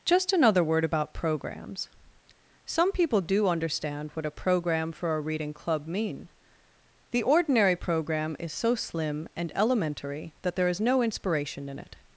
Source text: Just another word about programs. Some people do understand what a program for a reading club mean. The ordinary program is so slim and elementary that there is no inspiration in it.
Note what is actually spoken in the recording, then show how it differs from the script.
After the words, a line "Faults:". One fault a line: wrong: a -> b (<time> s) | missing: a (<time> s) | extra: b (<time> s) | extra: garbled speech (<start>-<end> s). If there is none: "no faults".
Just another word about programs. Some people do understand what a program for a reading club mean. The ordinary program is so slim and elementary that there is no inspiration in it.
Faults:
no faults